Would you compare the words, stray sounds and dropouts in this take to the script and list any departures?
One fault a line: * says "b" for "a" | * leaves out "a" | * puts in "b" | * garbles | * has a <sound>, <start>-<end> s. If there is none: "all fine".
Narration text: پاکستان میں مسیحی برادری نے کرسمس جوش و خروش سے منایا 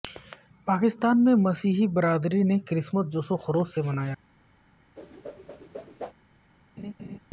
* has a whoosh, 5.0-6.1 s
* has a laugh, 6.8-7.2 s